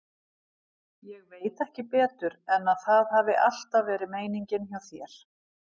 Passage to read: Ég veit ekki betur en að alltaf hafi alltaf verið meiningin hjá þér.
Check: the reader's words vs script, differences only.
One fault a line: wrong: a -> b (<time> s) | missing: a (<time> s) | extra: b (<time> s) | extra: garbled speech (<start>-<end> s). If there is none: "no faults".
wrong: alltaf -> það (2.9 s)